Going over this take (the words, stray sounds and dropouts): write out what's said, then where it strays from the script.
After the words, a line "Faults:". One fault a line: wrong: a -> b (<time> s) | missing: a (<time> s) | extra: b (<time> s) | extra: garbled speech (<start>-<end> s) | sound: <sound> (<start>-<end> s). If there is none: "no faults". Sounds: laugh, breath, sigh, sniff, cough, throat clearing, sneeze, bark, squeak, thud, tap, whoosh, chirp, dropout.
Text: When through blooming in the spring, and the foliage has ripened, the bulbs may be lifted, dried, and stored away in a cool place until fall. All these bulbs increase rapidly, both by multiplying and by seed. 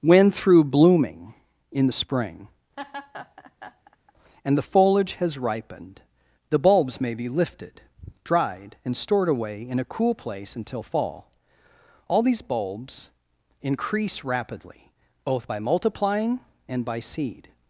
When through blooming in the spring, and the foliage has ripened, the bulbs may be lifted, dried, and stored away in a cool place until fall. All these bulbs increase rapidly, both by multiplying and by seed.
Faults:
sound: laugh (2.8-4.1 s)